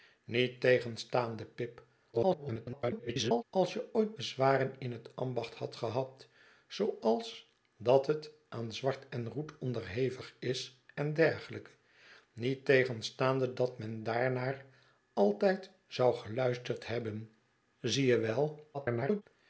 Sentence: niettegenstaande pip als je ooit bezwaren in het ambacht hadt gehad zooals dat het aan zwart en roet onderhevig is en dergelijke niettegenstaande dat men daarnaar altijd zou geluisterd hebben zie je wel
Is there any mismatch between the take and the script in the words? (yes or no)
yes